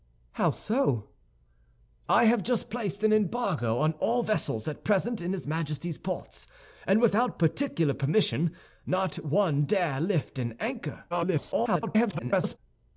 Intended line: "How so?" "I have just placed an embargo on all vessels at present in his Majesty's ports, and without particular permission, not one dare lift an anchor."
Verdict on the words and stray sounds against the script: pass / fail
fail